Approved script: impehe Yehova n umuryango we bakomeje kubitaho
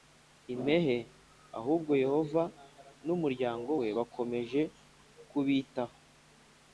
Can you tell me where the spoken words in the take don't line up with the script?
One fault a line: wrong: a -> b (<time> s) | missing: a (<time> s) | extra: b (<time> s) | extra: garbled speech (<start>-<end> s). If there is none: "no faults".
extra: Ahubwo (1.6 s)